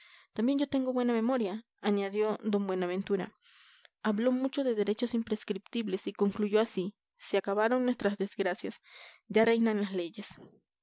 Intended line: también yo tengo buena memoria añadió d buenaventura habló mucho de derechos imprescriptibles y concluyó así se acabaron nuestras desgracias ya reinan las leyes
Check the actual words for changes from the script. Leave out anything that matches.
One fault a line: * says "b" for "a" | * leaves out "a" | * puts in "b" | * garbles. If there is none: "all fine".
all fine